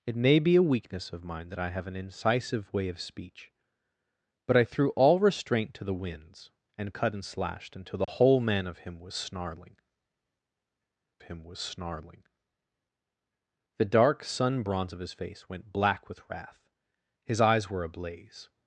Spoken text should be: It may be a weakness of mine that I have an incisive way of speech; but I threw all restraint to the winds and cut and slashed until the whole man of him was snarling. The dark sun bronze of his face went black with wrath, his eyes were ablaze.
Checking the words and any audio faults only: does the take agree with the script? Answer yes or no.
no